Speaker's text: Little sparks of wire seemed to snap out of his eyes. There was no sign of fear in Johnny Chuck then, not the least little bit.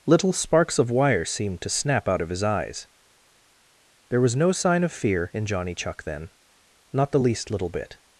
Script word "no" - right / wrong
right